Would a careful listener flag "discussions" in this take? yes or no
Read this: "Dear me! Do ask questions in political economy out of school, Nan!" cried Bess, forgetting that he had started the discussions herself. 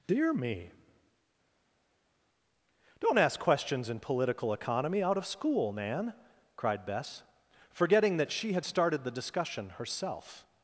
yes